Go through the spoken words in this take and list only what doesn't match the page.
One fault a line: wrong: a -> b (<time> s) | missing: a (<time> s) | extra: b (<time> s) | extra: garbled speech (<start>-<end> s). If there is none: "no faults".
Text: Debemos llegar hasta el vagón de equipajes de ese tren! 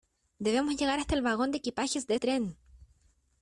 missing: ese (2.1 s)